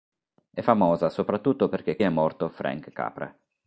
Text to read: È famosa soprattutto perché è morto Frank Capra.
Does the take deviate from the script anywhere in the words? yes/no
no